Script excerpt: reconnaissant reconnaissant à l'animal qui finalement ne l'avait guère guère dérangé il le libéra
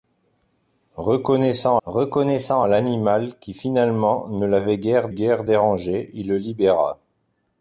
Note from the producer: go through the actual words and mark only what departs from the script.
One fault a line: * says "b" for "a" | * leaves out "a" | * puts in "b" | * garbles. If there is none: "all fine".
all fine